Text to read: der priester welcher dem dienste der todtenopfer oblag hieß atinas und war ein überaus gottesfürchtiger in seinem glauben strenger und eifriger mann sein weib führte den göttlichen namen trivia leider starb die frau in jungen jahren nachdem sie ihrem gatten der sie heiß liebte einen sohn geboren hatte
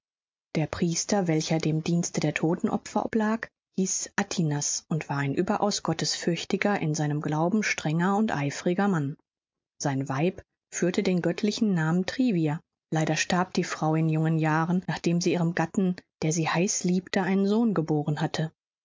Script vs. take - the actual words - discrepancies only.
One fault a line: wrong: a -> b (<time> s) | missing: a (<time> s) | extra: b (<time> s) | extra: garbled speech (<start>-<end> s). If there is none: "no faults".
no faults